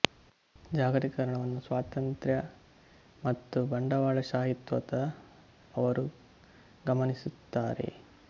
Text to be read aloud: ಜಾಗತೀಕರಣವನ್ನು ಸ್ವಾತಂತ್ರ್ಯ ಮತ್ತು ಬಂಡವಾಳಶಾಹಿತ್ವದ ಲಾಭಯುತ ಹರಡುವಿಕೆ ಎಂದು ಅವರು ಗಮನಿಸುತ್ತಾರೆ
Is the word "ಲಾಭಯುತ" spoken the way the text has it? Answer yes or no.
no